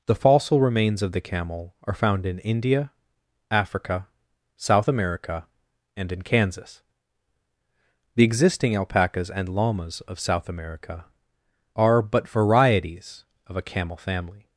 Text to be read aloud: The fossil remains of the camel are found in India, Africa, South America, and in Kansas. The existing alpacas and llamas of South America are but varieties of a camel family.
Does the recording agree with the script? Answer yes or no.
yes